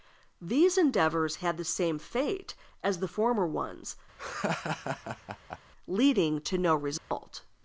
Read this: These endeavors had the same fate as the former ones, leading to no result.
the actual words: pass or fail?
pass